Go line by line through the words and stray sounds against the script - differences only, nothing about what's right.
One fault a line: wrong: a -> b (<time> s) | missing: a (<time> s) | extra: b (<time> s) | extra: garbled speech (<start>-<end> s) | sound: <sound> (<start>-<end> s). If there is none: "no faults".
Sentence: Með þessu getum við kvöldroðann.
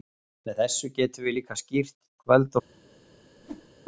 extra: líka skýrt (1.4 s)
sound: whoosh (3.4-3.7 s)